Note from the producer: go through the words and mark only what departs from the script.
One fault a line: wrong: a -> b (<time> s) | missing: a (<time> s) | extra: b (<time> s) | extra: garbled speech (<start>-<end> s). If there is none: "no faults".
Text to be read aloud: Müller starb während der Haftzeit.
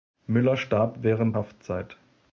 missing: der (1.4 s)